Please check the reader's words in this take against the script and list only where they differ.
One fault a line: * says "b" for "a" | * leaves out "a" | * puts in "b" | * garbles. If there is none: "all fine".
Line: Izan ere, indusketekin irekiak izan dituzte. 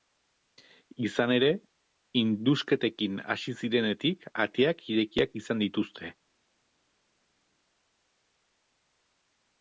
* puts in "hasi zirenetik ateak"